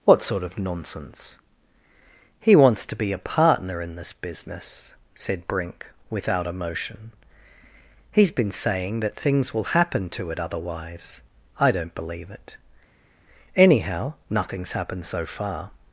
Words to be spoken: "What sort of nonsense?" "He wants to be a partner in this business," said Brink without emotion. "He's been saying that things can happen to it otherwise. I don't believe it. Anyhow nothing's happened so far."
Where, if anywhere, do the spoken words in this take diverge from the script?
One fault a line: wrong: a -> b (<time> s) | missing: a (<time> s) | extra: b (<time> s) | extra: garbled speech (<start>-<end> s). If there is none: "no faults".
wrong: can -> will (9.5 s)